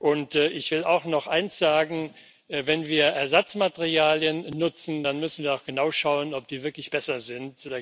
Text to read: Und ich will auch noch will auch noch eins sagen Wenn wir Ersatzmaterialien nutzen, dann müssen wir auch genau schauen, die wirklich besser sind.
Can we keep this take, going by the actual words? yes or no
no